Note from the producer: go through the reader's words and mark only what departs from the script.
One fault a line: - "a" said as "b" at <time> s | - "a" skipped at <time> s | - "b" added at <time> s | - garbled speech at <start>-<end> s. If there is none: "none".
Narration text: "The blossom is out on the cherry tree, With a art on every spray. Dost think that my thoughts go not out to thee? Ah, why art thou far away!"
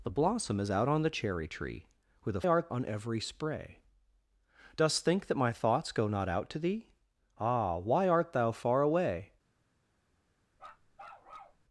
none